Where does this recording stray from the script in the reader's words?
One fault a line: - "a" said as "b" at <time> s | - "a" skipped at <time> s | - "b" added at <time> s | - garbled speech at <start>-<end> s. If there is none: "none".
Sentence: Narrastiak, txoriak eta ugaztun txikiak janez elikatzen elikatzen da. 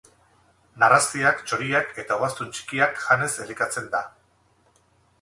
- "elikatzen" skipped at 4.0 s